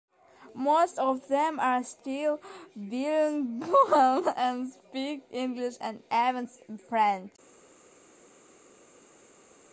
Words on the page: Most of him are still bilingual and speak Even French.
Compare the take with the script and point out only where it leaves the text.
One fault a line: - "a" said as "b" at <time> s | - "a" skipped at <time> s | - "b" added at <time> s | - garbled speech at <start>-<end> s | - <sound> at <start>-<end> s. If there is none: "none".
- "him" said as "them" at 1.3 s
- "English and" added at 5.3 s